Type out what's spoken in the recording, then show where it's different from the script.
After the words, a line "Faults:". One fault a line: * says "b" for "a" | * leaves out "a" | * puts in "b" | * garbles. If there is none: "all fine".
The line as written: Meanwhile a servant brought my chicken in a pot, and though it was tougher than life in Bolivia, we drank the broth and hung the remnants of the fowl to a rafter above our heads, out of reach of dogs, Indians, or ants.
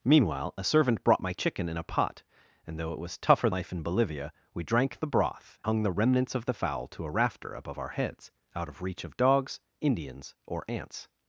Meanwhile a servant brought my chicken in a pot, and though it was tougher life in Bolivia, we drank the broth hung the remnants of the fowl to a rafter above our heads, out of reach of dogs, Indians, or ants.
Faults:
* leaves out "than"
* leaves out "and"